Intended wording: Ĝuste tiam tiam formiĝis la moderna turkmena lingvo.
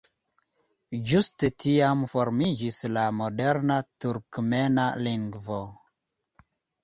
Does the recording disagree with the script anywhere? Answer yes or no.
yes